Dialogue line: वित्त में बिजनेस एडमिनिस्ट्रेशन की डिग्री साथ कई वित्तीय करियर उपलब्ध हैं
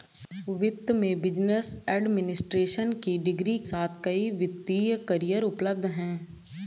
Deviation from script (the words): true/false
false